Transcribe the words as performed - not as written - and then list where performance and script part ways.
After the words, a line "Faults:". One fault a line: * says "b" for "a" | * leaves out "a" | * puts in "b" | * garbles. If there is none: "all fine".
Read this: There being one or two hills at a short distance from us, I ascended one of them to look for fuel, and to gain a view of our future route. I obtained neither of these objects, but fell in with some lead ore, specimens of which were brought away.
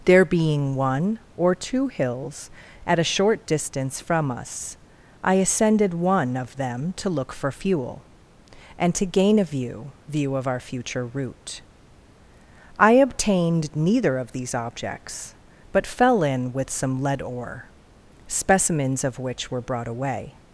There being one or two hills at a short distance from us, I ascended one of them to look for fuel, and to gain a view view of our future route. I obtained neither of these objects, but fell in with some lead ore, specimens of which were brought away.
Faults:
* puts in "view"